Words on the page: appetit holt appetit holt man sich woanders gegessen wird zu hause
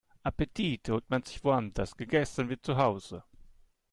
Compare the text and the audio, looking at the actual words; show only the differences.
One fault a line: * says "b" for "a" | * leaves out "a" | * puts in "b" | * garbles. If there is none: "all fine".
* leaves out "appetit holt"